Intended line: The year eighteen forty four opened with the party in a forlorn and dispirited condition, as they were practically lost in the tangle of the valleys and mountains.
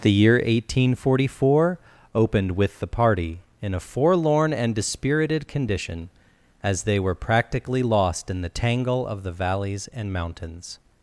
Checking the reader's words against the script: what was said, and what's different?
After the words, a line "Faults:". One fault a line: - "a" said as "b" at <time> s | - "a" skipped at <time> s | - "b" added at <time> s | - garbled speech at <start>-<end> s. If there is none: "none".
The year eighteen forty four opened with the party in a forlorn and dispirited condition, as they were practically lost in the tangle of the valleys and mountains.
Faults:
none